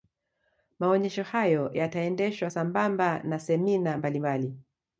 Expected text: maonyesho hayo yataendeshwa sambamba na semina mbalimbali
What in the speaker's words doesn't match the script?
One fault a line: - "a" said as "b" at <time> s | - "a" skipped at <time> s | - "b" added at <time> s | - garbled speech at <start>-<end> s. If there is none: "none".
none